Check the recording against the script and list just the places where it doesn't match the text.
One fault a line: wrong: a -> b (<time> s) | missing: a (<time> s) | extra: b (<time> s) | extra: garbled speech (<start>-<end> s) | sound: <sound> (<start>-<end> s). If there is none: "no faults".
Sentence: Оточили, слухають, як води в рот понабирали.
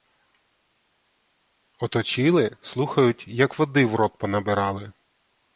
no faults